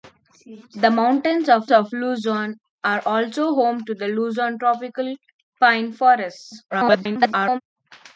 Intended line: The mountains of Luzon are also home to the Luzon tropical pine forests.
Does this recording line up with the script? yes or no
no